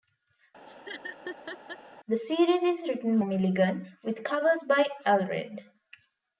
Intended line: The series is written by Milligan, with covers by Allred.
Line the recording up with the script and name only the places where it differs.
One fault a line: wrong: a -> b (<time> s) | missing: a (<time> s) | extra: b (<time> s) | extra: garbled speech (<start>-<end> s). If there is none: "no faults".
missing: by (3.2 s)